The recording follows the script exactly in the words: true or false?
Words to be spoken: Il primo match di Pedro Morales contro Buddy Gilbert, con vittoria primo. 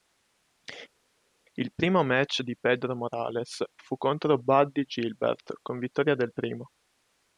false